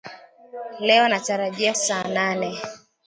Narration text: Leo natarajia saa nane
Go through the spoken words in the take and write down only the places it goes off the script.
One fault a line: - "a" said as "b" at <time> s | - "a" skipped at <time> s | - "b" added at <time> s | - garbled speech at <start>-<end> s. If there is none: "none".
none